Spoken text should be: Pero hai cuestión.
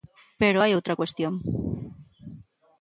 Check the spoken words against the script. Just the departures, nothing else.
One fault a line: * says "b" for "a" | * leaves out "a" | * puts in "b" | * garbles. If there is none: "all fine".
* puts in "outra"